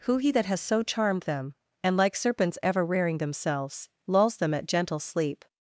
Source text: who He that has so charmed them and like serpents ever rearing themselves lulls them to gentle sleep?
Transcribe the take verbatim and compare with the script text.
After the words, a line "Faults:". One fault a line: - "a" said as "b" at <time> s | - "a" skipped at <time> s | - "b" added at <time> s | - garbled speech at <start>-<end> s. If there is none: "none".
who He that has so charmed them and like serpents ever rearing themselves lulls them at gentle sleep?
Faults:
- "to" said as "at" at 4.5 s